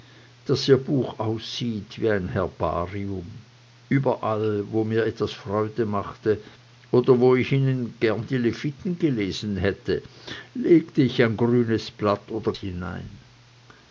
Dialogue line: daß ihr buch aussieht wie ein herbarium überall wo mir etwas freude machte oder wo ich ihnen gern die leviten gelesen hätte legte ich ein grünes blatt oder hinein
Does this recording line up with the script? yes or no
yes